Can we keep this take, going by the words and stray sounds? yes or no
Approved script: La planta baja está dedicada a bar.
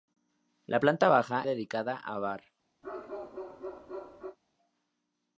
no